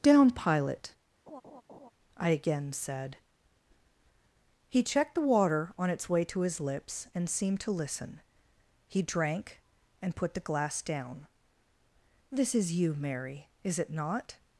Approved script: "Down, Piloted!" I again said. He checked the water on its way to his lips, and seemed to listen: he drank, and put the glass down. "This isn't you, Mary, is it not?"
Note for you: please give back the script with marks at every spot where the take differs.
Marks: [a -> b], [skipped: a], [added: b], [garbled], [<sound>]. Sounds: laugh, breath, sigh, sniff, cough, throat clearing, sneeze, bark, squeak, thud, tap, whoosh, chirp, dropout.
"Down, [Piloted!" -> Pilot] [laugh] I again said. He checked the water on its way to his lips, and seemed to listen: he drank, and put the glass down. "This [isn't -> is] you, Mary, is it not?"